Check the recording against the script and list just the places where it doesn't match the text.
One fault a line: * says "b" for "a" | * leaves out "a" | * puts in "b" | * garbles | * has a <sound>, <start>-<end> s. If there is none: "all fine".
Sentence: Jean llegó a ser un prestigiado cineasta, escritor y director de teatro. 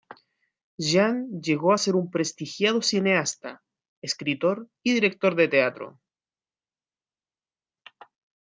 all fine